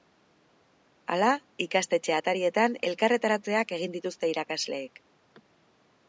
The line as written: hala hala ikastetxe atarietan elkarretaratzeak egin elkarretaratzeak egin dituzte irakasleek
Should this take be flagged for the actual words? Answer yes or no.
yes